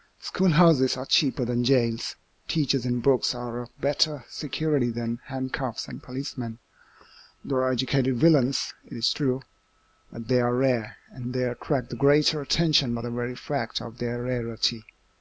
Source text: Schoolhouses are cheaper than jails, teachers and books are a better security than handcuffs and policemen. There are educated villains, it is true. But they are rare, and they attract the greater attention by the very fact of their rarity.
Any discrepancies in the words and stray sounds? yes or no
no